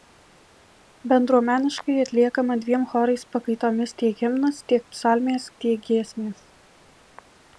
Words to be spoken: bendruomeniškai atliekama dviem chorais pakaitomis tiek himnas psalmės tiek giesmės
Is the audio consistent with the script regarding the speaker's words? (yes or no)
no